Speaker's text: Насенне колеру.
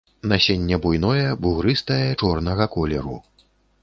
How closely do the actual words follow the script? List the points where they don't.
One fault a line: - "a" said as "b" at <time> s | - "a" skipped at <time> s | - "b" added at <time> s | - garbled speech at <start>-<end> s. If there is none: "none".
- "буйное бугрыстае чорнага" added at 0.8 s